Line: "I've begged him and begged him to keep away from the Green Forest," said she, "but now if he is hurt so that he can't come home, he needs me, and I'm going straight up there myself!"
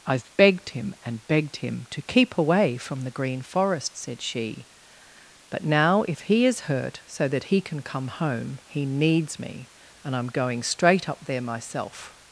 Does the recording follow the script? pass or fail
fail